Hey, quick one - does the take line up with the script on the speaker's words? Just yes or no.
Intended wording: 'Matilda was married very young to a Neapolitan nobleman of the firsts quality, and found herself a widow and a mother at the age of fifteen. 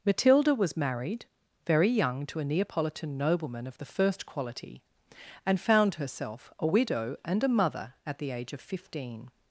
no